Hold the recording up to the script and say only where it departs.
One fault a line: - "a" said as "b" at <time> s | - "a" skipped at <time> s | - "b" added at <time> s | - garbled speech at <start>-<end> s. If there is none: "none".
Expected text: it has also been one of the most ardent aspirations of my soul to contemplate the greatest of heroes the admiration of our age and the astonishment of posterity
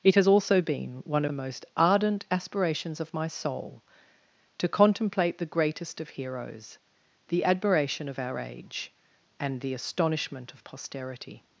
- "of" skipped at 1.3 s